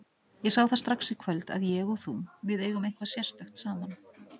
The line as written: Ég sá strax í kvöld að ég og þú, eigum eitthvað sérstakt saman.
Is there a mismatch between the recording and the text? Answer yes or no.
yes